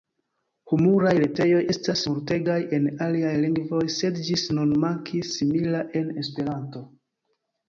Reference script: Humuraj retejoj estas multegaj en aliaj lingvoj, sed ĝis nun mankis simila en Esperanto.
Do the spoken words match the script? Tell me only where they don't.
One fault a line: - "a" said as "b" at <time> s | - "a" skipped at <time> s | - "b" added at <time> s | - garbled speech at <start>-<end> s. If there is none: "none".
none